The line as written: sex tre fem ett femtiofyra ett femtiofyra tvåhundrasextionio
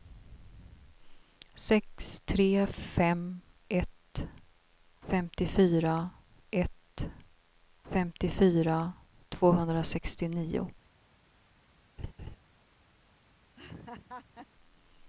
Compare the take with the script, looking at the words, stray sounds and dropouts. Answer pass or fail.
fail